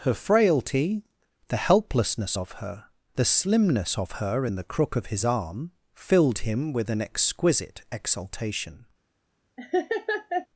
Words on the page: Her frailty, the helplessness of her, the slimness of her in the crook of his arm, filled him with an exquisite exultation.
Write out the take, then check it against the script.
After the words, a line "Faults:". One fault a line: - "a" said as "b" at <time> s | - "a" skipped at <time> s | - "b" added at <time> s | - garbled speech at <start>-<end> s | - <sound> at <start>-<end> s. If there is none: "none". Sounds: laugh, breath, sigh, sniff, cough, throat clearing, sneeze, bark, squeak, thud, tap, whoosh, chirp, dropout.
Her frailty, the helplessness of her, the slimness of her in the crook of his arm, filled him with an exquisite exultation.
Faults:
- laugh at 9.6-10.5 s